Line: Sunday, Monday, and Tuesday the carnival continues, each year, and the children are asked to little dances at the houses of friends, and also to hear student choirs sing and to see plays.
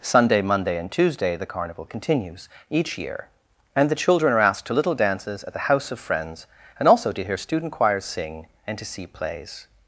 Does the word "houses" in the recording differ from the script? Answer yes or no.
yes